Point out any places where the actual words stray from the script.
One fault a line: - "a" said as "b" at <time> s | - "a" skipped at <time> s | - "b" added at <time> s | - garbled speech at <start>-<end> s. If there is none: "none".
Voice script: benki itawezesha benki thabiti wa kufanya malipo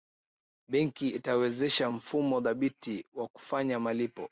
- "benki" said as "mfumo" at 1.9 s